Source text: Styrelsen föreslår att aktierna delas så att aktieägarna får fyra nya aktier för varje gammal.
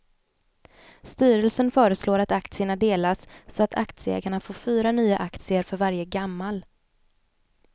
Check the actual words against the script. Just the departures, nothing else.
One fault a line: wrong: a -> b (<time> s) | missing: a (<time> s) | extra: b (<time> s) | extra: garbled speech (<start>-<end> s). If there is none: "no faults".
no faults